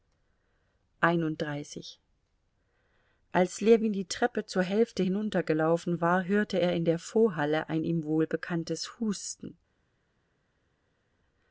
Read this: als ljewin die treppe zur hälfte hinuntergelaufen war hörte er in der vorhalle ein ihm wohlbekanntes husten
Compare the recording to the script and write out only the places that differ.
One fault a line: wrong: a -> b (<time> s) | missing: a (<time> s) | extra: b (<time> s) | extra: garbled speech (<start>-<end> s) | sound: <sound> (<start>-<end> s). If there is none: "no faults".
no faults